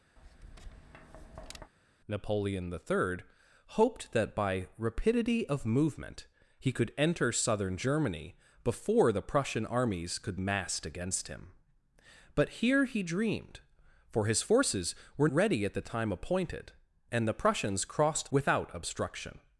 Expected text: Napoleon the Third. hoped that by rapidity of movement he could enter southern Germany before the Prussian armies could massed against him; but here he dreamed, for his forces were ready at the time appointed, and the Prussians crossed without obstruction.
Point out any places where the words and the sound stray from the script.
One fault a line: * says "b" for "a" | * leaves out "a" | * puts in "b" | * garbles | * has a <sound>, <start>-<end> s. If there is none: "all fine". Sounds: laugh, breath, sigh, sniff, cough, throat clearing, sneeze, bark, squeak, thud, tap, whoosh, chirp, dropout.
* has a tap, 0.2-1.7 s